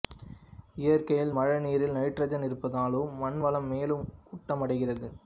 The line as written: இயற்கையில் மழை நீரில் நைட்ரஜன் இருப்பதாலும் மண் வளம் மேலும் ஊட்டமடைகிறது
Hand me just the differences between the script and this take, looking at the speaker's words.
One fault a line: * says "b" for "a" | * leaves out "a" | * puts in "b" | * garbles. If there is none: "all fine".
all fine